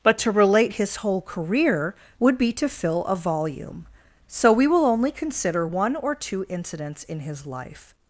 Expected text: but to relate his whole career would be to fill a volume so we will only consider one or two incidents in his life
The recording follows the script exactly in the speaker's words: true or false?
true